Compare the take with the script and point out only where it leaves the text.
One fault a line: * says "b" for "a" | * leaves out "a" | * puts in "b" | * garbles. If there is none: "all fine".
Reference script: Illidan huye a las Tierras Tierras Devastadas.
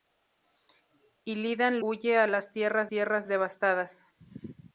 all fine